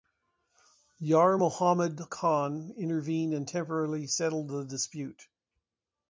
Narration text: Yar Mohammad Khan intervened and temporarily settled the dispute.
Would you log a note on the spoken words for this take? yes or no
no